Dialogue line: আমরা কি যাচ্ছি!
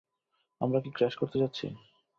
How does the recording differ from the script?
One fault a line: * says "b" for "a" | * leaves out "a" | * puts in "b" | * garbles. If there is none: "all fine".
* puts in "ক্র্যাশ করতে"